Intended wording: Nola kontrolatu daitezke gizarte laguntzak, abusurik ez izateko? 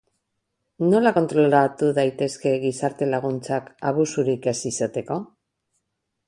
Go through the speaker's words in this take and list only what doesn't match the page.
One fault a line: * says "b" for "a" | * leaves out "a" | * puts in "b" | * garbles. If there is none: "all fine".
all fine